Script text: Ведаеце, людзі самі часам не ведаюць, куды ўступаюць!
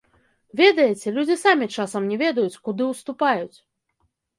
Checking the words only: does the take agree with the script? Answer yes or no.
yes